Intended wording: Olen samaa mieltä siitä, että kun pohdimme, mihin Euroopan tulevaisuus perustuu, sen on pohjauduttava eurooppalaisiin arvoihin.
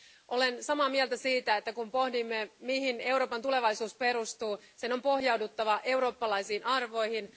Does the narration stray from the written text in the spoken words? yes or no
no